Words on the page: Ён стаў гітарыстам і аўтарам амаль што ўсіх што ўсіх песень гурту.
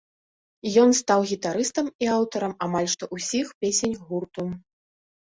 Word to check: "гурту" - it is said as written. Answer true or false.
true